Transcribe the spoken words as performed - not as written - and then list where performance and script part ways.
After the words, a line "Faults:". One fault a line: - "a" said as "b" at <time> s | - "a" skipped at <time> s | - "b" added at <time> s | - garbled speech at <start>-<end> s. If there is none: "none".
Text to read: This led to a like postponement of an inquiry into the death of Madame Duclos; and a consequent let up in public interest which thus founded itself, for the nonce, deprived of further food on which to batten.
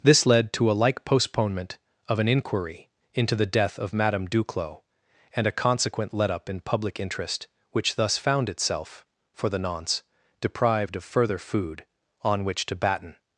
This led to a like postponement of an inquiry into the death of Madame Duclos; and a consequent let up in public interest which thus found itself, for the nonce, deprived of further food on which to batten.
Faults:
- "founded" said as "found" at 8.2 s